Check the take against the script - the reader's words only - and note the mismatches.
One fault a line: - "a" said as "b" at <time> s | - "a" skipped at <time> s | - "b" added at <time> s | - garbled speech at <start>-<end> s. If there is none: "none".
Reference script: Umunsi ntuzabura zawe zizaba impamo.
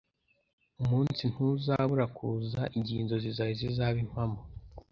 - "kuza igihe inzozi" added at 2.2 s